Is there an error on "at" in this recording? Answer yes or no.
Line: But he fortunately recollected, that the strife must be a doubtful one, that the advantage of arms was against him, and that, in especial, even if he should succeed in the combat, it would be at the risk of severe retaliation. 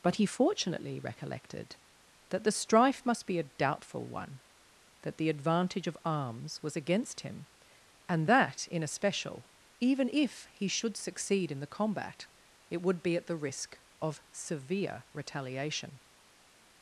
no